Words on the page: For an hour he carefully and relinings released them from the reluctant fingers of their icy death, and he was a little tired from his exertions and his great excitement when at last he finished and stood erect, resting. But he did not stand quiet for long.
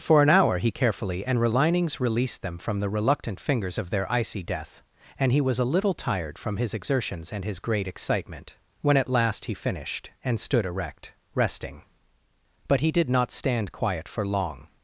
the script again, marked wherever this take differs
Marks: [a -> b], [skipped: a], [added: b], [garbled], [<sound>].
For an hour he carefully and relinings released them from the reluctant fingers of their icy death, and he was a little tired from his exertions and his great excitement when at last he finished and stood erect, resting. But he did not stand quiet for long.